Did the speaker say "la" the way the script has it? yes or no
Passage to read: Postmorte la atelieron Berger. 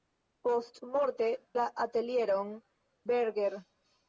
yes